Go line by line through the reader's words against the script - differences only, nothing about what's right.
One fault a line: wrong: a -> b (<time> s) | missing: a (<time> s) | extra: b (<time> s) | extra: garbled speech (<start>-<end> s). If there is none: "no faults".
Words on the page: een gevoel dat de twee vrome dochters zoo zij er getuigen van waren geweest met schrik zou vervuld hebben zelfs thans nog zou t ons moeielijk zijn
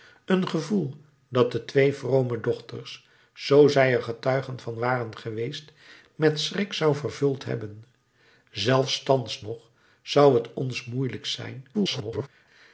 extra: garbled speech (11.7-12.3 s)